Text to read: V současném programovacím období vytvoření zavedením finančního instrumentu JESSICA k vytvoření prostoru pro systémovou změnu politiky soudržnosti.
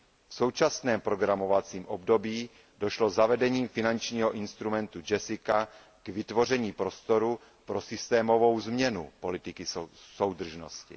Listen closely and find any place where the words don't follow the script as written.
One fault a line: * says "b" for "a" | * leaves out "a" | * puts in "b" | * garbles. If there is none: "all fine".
* says "došlo" for "vytvoření"